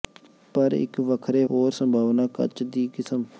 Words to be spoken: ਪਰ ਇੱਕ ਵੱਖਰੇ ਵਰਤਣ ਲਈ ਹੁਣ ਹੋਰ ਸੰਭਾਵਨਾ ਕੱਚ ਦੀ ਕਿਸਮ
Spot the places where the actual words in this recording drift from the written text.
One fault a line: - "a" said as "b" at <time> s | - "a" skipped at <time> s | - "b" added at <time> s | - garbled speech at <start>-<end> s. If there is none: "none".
- "ਵਰਤਣ ਲਈ ਹੁਣ" skipped at 1.4 s